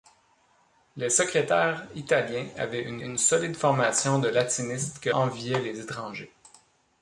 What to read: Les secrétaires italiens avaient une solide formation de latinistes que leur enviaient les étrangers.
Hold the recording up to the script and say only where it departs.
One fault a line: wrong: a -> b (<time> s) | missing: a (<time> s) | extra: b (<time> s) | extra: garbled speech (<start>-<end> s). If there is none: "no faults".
extra: une (3.0 s)
missing: leur (5.1 s)